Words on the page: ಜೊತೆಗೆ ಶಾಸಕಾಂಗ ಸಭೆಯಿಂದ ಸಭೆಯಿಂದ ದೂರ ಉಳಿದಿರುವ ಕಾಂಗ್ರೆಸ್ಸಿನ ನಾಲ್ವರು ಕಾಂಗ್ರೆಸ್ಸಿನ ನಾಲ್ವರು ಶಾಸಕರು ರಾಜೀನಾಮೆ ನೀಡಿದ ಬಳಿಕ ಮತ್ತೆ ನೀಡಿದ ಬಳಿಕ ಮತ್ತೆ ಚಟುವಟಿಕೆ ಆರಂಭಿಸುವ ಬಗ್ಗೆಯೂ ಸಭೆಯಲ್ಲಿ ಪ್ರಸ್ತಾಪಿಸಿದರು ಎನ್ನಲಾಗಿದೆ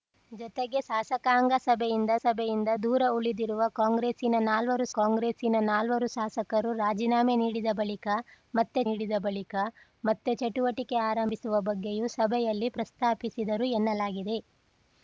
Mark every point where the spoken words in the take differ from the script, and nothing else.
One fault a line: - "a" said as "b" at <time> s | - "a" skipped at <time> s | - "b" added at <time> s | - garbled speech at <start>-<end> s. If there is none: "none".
none